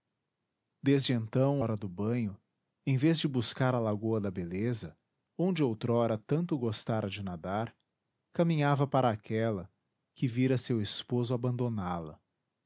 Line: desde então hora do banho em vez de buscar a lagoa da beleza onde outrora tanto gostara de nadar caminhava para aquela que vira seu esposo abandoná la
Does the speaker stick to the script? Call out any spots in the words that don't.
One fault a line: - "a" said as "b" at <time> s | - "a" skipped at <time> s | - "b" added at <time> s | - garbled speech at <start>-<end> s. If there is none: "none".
none